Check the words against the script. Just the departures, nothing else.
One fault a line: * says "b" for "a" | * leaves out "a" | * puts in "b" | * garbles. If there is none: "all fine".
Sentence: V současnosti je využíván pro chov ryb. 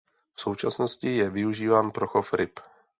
all fine